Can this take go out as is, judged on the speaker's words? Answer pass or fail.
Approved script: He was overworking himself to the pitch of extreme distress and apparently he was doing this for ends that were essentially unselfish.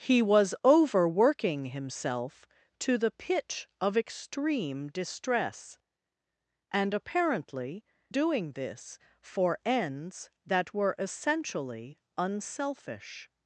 fail